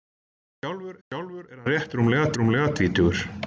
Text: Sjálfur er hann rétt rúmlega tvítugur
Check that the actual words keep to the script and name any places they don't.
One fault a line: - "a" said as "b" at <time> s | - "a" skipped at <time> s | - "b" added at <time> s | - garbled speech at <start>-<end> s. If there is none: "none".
- "sjálfur" added at 1.1 s
- "rúmlega" added at 2.4 s